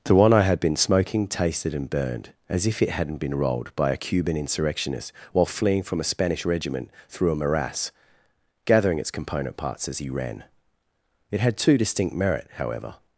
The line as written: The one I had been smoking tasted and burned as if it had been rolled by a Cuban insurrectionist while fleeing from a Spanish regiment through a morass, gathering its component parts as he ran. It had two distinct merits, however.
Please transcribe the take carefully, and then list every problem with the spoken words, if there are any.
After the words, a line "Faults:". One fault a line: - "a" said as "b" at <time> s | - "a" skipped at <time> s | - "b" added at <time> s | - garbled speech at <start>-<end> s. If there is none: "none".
The one I had been smoking tasted and burned as if it hadn't been rolled by a Cuban insurrectionist while fleeing from a Spanish regiment through a morass, gathering its component parts as he ran. It had two distinct merit, however.
Faults:
- "had" said as "hadn't" at 2.9 s
- "merits" said as "merit" at 12.1 s